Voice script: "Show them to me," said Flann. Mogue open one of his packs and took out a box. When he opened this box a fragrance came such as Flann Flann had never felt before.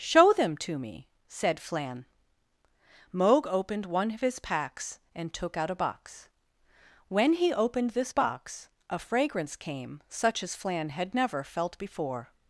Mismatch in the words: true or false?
true